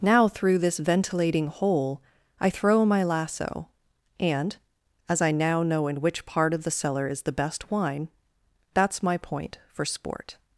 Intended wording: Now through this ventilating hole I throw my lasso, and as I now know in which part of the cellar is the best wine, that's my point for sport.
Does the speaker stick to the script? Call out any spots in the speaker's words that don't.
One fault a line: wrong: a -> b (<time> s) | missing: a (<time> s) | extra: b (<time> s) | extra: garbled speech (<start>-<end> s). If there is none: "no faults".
no faults